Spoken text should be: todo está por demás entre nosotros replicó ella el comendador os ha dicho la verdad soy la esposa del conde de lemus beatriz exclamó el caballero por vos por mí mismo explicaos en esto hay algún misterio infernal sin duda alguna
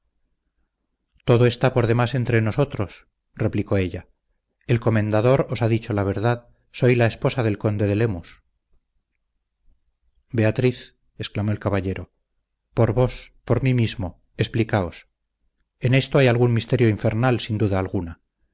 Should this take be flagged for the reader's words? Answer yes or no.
no